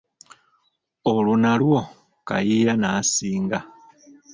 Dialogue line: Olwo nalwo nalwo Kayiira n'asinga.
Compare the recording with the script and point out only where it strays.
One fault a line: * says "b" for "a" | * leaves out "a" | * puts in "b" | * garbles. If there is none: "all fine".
* leaves out "nalwo"